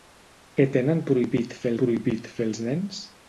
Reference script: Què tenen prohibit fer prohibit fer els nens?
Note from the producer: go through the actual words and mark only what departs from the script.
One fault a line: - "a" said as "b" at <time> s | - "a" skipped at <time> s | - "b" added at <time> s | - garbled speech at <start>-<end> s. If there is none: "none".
none